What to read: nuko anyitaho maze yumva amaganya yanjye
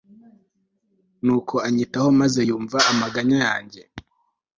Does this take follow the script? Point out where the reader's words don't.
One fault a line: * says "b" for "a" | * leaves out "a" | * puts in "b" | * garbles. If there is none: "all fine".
all fine